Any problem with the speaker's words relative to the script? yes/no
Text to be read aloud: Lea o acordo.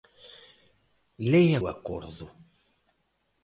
no